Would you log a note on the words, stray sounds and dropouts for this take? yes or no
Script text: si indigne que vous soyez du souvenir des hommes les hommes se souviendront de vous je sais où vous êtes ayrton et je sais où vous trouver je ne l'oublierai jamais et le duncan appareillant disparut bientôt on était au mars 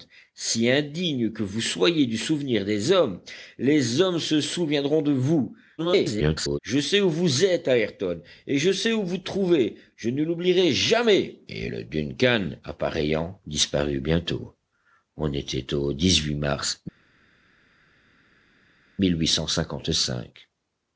yes